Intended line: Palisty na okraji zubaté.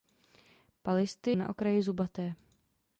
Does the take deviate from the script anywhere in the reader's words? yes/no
no